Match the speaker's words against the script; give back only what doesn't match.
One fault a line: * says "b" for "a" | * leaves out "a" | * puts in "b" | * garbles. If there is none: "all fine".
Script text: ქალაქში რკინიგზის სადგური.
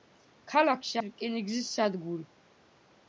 all fine